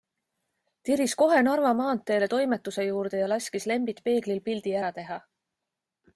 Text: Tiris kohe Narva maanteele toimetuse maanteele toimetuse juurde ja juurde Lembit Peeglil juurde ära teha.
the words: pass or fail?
fail